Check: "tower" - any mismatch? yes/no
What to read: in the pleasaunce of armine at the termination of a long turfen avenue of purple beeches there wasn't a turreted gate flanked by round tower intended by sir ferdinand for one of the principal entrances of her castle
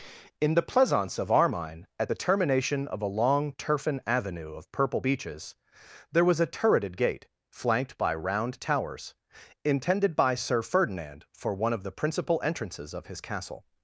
yes